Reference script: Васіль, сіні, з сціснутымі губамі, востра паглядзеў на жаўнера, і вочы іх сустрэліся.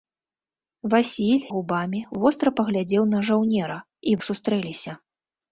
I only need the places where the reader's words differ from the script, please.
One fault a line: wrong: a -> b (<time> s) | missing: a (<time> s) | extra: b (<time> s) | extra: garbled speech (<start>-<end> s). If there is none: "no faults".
missing: сіні з сціснутымі (1.4 s)
missing: вочы (4.2 s)